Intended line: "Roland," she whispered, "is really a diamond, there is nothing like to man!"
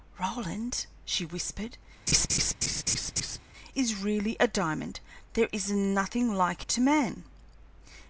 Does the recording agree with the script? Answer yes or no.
yes